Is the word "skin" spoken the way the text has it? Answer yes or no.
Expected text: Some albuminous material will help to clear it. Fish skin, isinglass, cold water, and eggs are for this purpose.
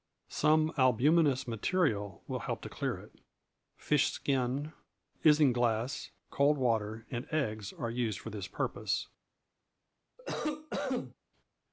yes